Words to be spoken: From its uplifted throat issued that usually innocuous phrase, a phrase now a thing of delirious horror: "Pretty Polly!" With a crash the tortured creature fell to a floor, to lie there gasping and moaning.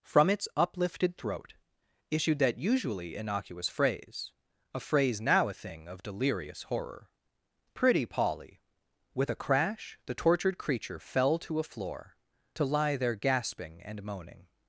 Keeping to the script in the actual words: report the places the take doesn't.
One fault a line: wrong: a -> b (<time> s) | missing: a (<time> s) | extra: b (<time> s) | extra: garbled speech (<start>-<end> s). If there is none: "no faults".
no faults